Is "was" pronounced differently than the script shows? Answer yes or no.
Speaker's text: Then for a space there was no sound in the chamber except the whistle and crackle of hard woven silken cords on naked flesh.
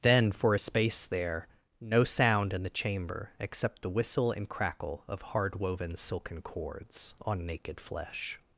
yes